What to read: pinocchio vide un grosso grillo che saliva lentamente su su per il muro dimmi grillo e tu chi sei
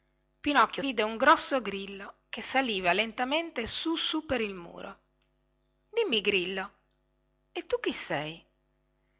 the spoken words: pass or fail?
pass